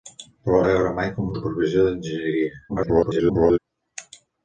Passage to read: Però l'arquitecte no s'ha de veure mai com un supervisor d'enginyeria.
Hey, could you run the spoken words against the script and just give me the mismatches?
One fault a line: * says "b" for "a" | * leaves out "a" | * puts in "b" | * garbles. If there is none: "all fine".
* leaves out "l'arquitecte no s'ha"
* leaves out "un"
* garbles